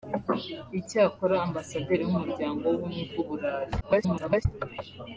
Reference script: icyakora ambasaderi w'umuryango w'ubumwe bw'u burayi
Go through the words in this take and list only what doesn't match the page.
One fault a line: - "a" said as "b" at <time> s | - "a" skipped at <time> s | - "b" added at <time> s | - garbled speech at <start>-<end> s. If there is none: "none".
- garbled speech at 3.8-4.5 s